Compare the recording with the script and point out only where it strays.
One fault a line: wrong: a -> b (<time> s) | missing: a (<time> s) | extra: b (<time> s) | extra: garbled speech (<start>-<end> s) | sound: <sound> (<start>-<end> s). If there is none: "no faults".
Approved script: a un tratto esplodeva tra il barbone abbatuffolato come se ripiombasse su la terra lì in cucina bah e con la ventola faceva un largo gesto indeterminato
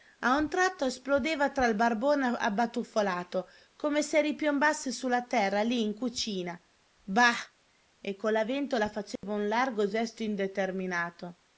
sound: dropout (9.2-9.2 s)